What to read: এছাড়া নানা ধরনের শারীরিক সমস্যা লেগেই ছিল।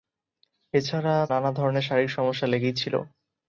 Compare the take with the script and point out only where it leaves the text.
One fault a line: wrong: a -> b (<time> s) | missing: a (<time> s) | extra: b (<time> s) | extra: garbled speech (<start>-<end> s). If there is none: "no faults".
no faults